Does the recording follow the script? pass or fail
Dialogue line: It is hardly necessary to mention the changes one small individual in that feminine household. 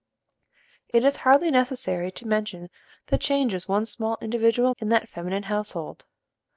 pass